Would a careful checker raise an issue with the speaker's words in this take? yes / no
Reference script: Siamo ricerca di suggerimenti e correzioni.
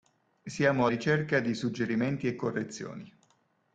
no